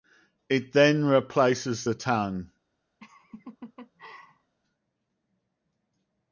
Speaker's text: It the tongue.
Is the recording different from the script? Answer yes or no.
yes